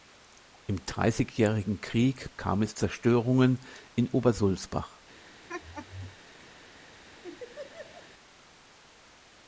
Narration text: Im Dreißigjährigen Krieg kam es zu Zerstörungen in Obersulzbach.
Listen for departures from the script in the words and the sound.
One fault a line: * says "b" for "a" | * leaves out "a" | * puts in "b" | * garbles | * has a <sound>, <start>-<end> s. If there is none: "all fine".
* leaves out "zu"
* has a laugh, 5.5-6.2 s
* has a laugh, 7.2-8.1 s